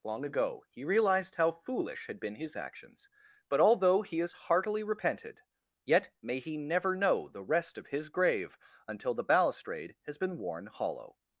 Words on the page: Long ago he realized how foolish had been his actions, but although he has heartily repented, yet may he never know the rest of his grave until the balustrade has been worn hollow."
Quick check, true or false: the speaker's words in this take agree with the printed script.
true